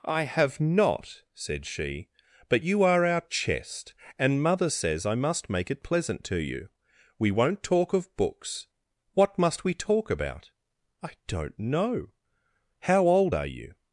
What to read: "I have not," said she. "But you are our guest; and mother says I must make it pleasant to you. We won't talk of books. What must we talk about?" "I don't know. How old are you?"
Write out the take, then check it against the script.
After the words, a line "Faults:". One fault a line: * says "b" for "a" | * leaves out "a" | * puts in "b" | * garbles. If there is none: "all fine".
"I have not," said she. "But you are our chest; and mother says I must make it pleasant to you. We won't talk of books. What must we talk about?" "I don't know. How old are you?"
Faults:
* says "chest" for "guest"